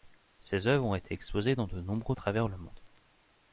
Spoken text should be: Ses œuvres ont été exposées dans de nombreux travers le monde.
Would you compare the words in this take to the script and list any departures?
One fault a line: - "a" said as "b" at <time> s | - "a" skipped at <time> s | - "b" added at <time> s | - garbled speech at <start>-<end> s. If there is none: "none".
none